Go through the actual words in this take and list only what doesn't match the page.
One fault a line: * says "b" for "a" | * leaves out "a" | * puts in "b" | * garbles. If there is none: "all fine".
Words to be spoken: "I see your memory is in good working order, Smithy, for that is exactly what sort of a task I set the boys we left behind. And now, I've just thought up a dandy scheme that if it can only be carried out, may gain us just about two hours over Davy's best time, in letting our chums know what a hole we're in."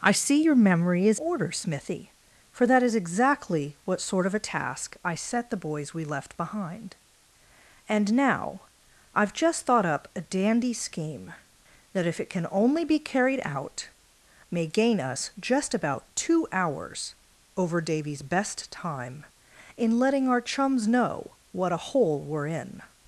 * leaves out "in good working"